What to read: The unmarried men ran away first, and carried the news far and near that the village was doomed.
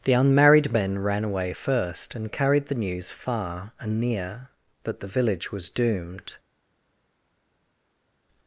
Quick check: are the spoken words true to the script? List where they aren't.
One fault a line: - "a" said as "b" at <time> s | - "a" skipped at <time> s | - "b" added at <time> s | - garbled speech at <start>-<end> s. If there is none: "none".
none